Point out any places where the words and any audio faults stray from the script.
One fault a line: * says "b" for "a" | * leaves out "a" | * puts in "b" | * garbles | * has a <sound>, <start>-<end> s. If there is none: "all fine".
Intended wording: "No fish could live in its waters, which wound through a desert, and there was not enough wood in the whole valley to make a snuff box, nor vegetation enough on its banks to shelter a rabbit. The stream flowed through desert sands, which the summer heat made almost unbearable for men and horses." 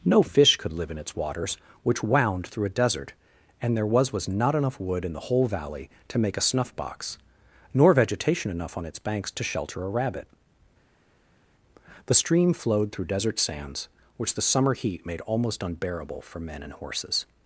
* puts in "was"